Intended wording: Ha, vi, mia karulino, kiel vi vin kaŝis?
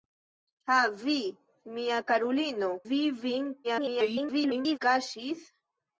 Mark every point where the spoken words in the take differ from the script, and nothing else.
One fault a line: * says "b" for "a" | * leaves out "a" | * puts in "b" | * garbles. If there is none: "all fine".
* leaves out "kiel"
* garbles